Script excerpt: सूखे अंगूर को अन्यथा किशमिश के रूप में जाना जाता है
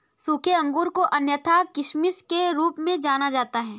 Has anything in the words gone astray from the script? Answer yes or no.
no